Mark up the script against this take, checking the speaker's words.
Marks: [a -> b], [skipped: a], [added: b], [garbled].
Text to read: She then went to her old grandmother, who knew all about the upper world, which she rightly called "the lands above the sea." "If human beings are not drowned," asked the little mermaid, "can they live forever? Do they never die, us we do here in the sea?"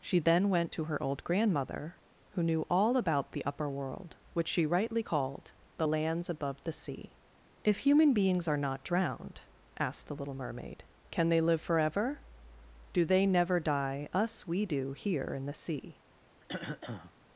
She then went to her old grandmother, who knew all about the upper world, which she rightly called "the lands above the sea." "If human beings are not drowned," asked the little mermaid, "can they live forever? Do they never die, us we do here in the sea?"